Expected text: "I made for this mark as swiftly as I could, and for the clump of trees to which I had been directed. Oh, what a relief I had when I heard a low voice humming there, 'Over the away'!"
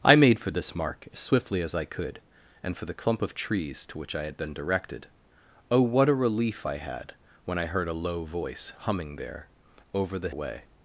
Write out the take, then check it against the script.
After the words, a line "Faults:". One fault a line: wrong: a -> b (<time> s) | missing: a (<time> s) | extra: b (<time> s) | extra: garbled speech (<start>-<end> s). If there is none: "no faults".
"I made for this mark as swiftly as I could, and for the clump of trees to which I had been directed. Oh, what a relief I had when I heard a low voice humming there, 'Over the away'!"
Faults:
no faults